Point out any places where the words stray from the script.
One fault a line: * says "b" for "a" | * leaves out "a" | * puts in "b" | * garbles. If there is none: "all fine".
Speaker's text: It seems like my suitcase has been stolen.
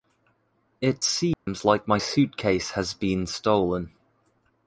all fine